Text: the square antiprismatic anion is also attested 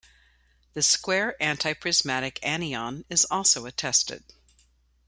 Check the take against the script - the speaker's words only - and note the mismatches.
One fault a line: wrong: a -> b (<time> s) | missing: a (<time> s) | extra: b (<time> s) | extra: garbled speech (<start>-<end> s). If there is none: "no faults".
no faults